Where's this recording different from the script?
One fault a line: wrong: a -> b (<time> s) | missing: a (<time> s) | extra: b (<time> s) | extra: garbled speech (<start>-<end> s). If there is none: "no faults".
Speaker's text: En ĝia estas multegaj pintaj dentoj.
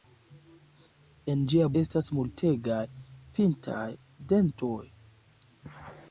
no faults